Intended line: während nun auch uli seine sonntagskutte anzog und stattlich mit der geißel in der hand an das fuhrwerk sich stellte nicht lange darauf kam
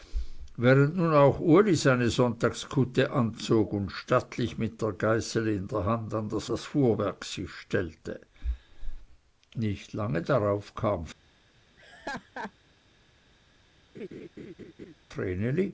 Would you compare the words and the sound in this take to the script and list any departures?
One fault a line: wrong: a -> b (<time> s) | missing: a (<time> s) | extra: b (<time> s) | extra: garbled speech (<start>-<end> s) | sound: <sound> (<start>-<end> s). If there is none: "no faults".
extra: das (6.5 s)
sound: laugh (11.8-12.5 s)
sound: laugh (13.9-14.9 s)